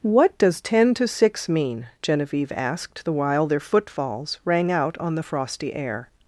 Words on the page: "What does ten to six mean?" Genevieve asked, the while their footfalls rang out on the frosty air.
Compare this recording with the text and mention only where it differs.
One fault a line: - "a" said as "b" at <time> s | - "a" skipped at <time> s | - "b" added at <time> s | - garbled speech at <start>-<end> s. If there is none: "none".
none